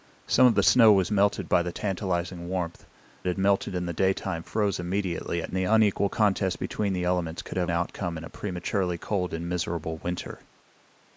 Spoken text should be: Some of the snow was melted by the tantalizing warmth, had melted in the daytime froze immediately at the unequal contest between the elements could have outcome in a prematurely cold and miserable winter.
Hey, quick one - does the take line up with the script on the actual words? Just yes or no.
yes